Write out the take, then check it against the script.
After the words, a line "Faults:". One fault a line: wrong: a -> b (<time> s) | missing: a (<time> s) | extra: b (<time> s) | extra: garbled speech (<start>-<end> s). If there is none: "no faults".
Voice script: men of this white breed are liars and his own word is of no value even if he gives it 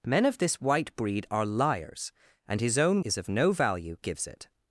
men of this white breed are liars and his own is of no value gives it
Faults:
missing: word (3.0 s)
missing: even if he (4.0 s)